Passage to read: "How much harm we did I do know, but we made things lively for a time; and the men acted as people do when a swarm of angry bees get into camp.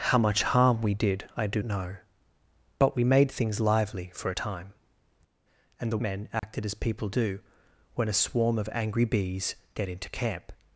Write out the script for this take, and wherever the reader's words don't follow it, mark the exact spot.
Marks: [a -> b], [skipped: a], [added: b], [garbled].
"How much harm we did I do know, but we made things lively for a time; and the men acted as people do when a swarm of angry bees get into camp.